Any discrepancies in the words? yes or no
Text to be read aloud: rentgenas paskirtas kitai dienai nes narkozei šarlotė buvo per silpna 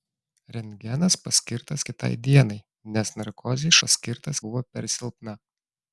yes